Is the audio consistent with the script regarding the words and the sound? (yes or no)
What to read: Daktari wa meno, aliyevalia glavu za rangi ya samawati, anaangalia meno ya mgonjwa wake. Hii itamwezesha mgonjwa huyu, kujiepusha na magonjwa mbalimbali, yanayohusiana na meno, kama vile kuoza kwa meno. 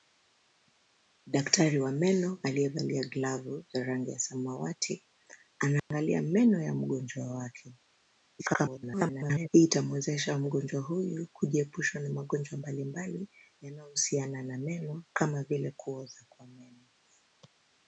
no